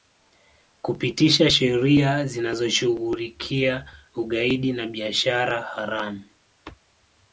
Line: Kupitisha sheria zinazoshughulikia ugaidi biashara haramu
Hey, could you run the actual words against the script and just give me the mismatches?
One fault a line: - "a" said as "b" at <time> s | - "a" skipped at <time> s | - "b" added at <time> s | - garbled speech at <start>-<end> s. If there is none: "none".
- "na" added at 4.7 s